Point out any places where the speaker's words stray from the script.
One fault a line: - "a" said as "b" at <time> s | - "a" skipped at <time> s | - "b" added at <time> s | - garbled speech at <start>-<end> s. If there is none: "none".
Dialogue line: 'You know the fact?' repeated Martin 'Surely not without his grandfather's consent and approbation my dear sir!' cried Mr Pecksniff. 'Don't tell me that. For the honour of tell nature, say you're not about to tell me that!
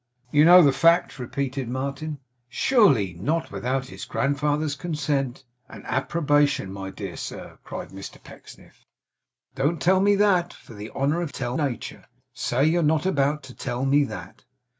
none